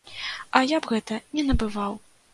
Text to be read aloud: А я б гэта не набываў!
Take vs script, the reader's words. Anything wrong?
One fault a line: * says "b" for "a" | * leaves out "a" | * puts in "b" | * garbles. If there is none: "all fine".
all fine